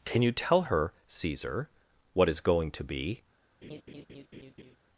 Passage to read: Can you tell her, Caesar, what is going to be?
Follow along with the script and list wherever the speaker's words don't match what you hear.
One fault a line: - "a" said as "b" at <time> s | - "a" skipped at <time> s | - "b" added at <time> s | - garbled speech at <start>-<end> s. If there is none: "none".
none